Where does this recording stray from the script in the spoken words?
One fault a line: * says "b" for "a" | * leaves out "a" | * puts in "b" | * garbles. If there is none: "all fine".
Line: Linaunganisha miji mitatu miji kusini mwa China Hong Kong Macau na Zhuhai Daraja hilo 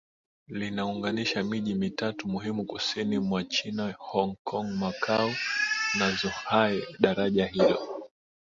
* says "muhimu" for "miji"